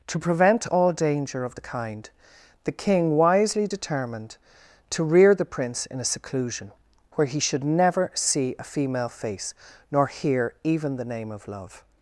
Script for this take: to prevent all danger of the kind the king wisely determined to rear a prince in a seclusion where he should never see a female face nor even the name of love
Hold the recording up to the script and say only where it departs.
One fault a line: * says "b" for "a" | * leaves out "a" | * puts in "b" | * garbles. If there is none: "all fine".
* says "the" for "a"
* puts in "hear"